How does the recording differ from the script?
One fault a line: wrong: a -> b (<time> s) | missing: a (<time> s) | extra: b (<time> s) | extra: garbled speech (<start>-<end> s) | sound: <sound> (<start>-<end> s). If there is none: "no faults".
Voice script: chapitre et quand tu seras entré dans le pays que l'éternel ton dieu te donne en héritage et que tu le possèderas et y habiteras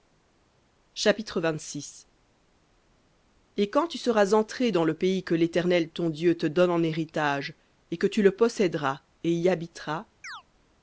sound: chirp (10.2-10.4 s)